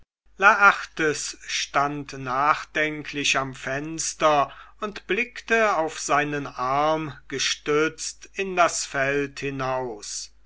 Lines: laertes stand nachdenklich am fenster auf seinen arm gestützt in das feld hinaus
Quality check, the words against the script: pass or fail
fail